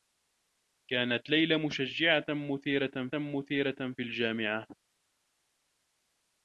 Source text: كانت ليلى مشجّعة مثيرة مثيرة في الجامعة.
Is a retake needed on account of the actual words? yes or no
no